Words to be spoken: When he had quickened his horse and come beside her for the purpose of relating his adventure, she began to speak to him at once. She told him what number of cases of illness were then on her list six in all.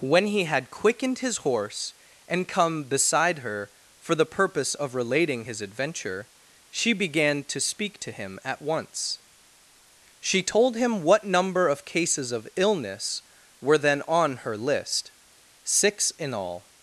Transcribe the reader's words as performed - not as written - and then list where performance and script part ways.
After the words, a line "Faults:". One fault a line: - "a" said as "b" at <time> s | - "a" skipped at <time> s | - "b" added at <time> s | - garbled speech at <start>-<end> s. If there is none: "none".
When he had quickened his horse and come beside her for the purpose of relating his adventure, she began to speak to him at once. She told him what number of cases of illness were then on her list six in all.
Faults:
none